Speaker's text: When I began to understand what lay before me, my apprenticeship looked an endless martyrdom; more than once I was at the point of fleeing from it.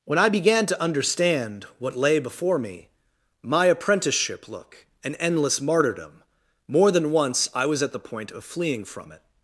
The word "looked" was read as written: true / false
false